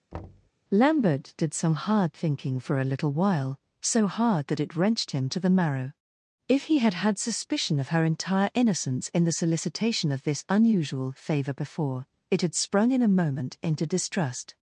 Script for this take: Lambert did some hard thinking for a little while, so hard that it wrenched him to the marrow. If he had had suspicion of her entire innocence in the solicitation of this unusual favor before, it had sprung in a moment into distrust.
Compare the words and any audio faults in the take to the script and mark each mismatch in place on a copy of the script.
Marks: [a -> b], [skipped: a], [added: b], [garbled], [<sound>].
[thud] Lambert did some hard thinking for a little while, so hard that it wrenched him to the marrow. If he had had suspicion of her entire innocence in the solicitation of this unusual favor before, it had sprung in a moment into distrust.